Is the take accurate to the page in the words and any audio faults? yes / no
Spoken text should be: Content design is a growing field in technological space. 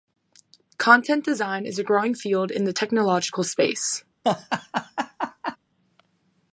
no